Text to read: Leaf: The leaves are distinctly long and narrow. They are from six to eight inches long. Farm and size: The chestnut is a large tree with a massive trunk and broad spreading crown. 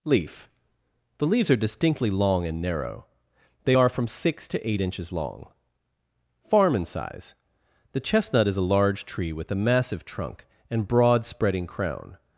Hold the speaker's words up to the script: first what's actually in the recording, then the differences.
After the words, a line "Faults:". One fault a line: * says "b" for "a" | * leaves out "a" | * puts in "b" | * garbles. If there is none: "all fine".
Leaf: The leaves are distinctly long and narrow. They are from six to eight inches long. Farm and size: The chestnut is a large tree with a massive trunk and broad spreading crown.
Faults:
all fine